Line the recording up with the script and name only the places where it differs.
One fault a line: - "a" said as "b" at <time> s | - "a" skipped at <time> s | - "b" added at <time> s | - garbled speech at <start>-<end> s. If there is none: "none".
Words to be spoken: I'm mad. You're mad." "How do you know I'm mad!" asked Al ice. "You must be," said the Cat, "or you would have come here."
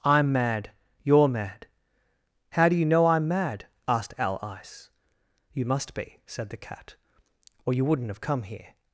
- "would" said as "wouldn't" at 7.8 s